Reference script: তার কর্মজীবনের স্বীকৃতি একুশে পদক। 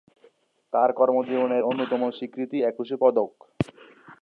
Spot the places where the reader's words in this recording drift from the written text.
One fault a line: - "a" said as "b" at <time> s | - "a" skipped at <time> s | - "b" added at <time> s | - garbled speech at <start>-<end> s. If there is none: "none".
- "অন্যতম" added at 1.6 s